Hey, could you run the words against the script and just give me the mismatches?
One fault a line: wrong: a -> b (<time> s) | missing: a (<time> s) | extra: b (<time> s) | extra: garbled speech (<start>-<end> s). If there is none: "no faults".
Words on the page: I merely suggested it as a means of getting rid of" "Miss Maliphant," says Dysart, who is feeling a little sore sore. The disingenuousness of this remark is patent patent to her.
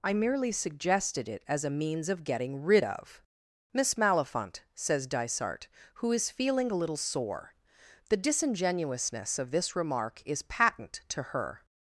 missing: sore (7.5 s)
missing: patent (11.0 s)